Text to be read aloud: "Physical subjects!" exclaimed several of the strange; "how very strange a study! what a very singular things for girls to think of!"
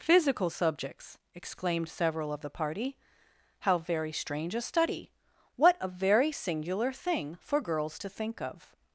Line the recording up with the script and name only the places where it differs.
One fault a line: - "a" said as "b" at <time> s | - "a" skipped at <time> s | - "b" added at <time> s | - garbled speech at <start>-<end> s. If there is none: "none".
- "strange" said as "party" at 2.5 s
- "things" said as "thing" at 6.9 s